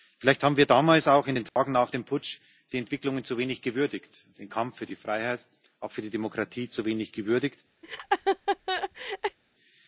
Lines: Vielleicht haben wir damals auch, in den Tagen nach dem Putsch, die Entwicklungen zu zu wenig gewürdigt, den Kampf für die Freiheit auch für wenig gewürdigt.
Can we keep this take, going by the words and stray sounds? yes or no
no